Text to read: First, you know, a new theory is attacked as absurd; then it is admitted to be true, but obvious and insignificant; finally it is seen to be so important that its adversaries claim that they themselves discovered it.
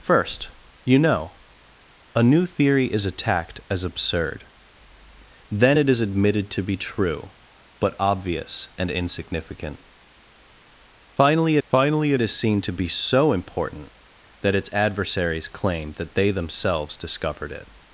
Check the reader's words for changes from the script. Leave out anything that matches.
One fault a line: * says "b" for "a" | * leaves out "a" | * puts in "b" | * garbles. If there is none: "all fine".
* puts in "finally"